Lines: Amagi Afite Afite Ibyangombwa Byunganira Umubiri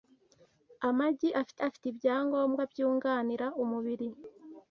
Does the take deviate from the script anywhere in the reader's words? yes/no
no